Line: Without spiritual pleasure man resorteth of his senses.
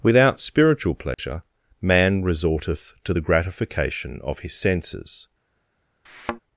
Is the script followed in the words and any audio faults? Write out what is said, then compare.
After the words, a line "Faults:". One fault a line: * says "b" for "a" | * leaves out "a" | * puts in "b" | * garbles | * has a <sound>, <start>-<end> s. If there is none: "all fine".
Without spiritual pleasure man resorteth to the gratification of his senses.
Faults:
* has a dropout, 1.1-1.2 s
* puts in "to the gratification"
* has a thud, 6.1-6.4 s